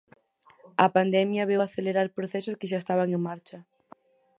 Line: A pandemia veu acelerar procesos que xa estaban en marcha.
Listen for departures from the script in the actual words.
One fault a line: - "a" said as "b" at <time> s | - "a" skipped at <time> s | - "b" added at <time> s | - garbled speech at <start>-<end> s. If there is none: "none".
none